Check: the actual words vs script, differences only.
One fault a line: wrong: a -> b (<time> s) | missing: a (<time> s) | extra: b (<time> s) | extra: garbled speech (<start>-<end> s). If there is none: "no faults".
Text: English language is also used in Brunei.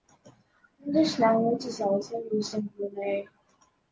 no faults